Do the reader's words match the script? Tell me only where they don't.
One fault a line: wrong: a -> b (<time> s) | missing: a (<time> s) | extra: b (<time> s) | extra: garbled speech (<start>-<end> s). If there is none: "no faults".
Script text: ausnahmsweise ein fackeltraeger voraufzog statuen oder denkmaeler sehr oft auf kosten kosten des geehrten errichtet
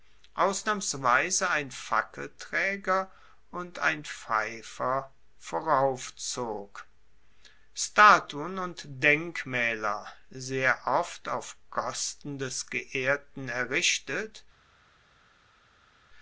extra: und ein pfeifer (3.5 s)
wrong: oder -> und (8.6 s)
missing: kosten (12.4 s)